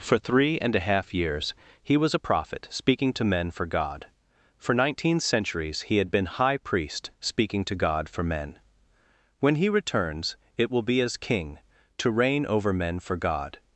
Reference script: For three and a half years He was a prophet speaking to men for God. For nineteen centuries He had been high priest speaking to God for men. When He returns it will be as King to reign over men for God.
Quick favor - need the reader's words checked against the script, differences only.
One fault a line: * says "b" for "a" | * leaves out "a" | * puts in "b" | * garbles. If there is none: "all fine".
all fine